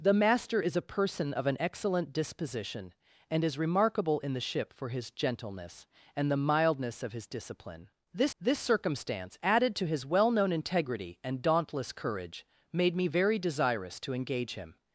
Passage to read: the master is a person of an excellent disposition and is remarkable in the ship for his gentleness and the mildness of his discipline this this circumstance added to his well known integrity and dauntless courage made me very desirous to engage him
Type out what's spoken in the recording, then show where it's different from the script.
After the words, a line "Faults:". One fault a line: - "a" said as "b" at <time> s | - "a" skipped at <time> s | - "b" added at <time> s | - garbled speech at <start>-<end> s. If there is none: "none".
the master is a person of an excellent disposition and is remarkable in the ship for his gentleness and the mildness of his discipline this this circumstance added to his well known integrity and dauntless courage made me very desirous to engage him
Faults:
none